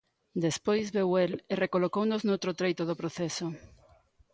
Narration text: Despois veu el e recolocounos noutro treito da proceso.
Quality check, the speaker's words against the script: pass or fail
fail